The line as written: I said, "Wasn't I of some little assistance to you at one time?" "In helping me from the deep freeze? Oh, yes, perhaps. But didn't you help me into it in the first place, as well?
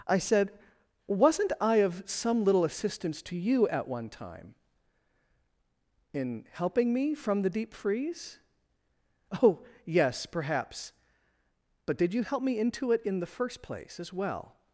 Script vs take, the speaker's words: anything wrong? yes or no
yes